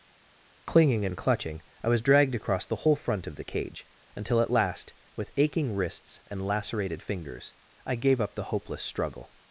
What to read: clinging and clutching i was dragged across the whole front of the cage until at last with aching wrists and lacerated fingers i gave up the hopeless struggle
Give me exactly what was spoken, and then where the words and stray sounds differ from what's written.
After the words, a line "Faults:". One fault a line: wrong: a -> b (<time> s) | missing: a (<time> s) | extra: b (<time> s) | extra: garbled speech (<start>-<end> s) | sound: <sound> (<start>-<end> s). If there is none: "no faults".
clinging and clutching i was dragged across the whole front of the cage until at last with aching wrists and lacerated fingers i gave up the hopeless struggle
Faults:
no faults